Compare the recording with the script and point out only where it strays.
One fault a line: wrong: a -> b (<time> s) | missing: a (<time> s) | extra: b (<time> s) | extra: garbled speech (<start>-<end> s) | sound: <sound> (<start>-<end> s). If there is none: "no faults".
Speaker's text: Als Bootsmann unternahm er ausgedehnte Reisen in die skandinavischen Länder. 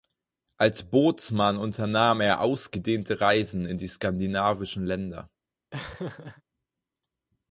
sound: laugh (5.7-6.4 s)